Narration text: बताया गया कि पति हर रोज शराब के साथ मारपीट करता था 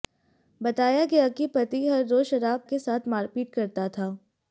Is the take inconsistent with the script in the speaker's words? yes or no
no